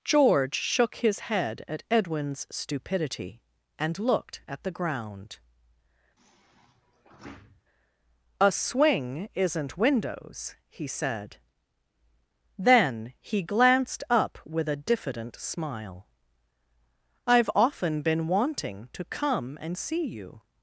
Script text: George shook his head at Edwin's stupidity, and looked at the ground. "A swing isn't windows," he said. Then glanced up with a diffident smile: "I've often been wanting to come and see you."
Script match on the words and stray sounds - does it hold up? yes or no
no